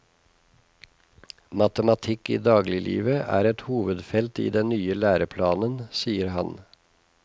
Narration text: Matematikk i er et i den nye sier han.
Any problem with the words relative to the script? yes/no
yes